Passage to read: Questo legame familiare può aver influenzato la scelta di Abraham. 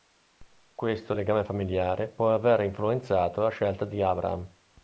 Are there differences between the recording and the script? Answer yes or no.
no